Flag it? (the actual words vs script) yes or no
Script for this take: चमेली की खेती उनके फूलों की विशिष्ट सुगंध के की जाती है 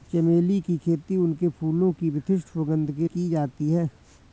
no